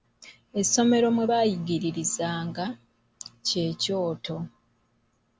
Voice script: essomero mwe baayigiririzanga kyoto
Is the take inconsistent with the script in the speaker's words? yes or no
yes